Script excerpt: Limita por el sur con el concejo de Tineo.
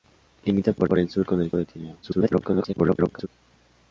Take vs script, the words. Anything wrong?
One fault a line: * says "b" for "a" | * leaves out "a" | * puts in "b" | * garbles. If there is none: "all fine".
* puts in "por"
* leaves out "concejo"
* garbles